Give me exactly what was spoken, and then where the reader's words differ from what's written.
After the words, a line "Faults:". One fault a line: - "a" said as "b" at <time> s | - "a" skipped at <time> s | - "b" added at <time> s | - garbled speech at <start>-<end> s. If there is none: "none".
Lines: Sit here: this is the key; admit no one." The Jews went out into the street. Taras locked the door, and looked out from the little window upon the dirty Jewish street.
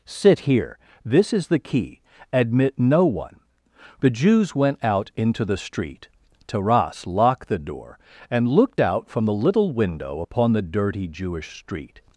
Sit here: this is the key; admit no one." The Jews went out into the street. Taras locked the door, and looked out from the little window upon the dirty Jewish street.
Faults:
none